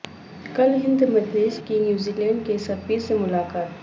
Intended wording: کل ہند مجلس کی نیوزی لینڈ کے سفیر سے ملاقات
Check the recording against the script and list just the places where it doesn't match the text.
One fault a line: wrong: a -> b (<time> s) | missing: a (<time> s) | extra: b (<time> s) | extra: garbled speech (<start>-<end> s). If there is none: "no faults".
no faults